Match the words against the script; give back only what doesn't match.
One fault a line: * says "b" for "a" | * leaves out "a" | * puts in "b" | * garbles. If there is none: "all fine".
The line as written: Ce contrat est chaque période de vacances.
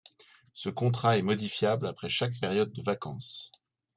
* puts in "modifiable après"